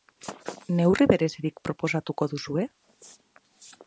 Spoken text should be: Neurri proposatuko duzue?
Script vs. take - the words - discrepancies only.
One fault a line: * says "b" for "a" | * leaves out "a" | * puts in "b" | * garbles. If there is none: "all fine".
* puts in "berezirik"